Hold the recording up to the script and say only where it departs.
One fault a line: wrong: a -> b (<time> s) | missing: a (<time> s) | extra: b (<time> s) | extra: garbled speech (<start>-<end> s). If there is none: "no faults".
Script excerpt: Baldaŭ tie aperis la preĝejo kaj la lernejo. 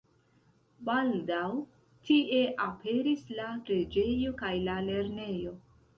no faults